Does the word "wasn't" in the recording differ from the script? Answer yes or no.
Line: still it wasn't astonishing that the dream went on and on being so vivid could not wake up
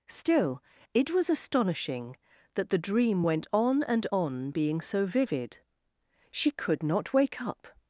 yes